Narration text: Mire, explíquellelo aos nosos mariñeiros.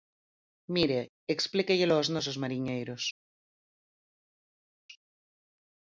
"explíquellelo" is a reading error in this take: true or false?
false